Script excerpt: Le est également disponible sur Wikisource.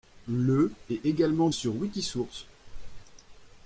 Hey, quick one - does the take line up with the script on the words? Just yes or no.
no